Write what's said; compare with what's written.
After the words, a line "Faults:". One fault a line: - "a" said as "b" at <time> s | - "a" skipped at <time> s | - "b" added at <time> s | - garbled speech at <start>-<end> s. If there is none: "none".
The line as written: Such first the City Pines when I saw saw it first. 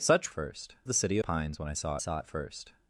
Such first the City Pines when I saw saw it first.
Faults:
none